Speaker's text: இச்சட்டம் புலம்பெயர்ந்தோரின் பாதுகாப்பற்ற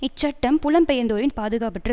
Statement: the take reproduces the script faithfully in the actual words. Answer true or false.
true